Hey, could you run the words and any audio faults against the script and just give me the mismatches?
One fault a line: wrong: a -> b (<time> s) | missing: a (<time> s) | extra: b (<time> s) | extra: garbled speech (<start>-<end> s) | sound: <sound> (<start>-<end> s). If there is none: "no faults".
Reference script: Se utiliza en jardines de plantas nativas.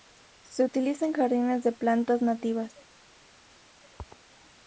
no faults